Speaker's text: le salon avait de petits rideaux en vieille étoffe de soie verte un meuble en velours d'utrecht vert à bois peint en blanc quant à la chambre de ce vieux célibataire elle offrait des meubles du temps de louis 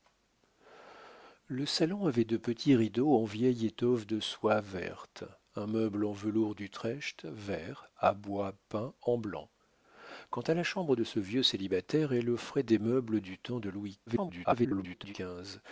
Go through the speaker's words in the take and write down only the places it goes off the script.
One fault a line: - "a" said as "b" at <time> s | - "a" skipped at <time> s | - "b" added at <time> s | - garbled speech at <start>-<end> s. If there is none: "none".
- garbled speech at 14.1-15.1 s